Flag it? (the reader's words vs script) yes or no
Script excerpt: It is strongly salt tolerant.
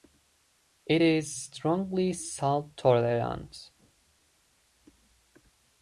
no